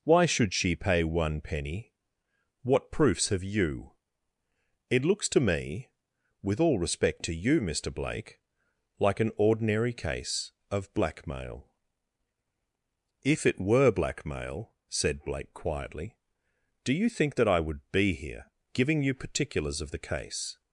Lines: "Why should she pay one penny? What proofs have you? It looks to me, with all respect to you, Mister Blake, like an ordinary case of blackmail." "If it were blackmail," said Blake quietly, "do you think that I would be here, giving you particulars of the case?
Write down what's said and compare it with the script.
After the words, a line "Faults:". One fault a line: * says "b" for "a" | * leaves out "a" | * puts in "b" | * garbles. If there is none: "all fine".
"Why should she pay one penny? What proofs have you? It looks to me, with all respect to you, Mister Blake, like an ordinary case of blackmail." "If it were blackmail," said Blake quietly, "do you think that I would be here, giving you particulars of the case?
Faults:
all fine